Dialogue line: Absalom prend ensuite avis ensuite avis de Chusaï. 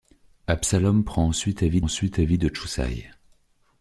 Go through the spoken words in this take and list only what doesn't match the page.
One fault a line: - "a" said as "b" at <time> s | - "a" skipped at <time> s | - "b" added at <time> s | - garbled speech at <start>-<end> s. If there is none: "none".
none